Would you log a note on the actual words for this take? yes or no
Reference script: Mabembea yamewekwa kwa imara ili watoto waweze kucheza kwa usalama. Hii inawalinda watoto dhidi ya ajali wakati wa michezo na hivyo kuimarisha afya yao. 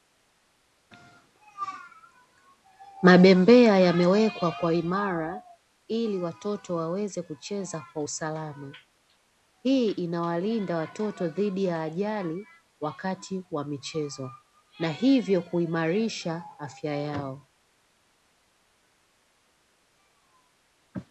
no